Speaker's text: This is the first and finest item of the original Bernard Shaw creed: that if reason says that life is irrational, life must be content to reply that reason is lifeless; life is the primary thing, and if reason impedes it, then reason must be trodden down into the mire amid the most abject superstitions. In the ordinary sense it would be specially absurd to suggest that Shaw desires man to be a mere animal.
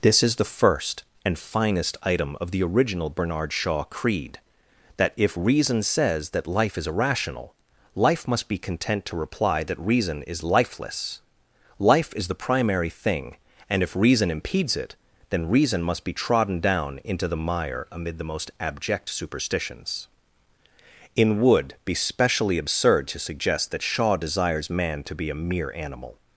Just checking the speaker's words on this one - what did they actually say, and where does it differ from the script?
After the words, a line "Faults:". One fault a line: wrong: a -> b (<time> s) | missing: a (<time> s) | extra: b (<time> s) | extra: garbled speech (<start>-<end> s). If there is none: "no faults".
This is the first and finest item of the original Bernard Shaw creed: that if reason says that life is irrational, life must be content to reply that reason is lifeless; life is the primary thing, and if reason impedes it, then reason must be trodden down into the mire amid the most abject superstitions. In would be specially absurd to suggest that Shaw desires man to be a mere animal.
Faults:
missing: the ordinary sense it (21.4 s)